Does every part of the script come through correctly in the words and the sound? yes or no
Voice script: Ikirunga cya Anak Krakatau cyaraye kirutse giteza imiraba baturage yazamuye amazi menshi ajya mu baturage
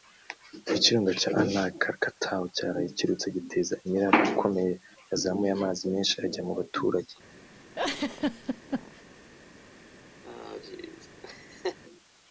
no